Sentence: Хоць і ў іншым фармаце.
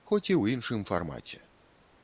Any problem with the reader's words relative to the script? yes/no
no